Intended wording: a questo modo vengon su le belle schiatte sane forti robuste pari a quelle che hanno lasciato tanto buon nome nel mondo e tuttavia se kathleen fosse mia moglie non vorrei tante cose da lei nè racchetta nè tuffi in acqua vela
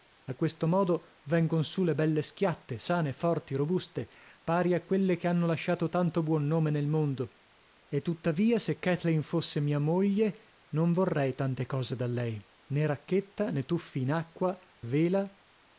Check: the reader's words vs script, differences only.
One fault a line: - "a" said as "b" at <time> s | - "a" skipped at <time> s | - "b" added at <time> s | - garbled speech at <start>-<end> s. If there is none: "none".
none